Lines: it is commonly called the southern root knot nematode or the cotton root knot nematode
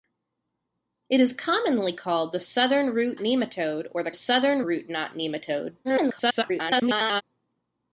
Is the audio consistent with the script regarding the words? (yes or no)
no